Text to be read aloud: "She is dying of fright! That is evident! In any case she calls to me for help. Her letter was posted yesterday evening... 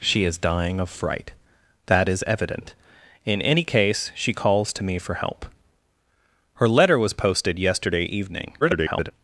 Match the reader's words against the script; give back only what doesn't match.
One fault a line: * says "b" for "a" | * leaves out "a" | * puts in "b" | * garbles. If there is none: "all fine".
* garbles